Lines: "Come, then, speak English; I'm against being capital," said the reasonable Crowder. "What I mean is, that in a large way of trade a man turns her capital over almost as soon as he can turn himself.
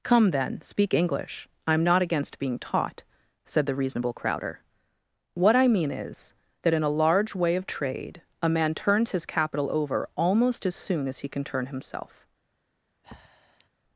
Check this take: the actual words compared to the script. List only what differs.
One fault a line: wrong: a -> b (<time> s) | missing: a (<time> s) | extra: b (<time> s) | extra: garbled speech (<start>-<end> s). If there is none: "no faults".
extra: not (1.8 s)
wrong: capital -> taught (2.6 s)
wrong: her -> his (9.1 s)